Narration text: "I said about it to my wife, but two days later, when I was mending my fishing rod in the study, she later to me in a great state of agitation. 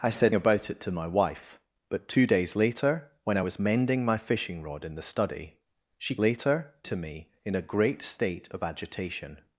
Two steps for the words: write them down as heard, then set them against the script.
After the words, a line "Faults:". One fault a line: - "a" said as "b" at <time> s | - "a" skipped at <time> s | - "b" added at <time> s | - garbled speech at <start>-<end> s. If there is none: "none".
"I said about it to my wife, but two days later, when I was mending my fishing rod in the study, she later to me in a great state of agitation.
Faults:
none